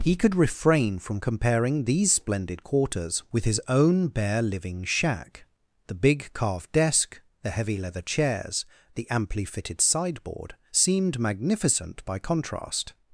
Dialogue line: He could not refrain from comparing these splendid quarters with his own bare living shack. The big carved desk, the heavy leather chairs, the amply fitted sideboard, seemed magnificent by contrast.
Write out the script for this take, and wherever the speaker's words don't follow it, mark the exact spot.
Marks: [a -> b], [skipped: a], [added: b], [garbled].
He could [skipped: not] refrain from comparing these splendid quarters with his own bare living shack. The big carved desk, the heavy leather chairs, the amply fitted sideboard, seemed magnificent by contrast.